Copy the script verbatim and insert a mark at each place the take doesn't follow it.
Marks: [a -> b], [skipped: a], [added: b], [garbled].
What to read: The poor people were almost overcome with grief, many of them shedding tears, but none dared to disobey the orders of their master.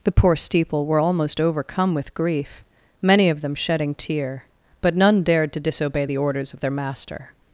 The poor [people -> steeple] were almost overcome with grief, many of them shedding [tears, -> tear] but none dared to disobey the orders of their master.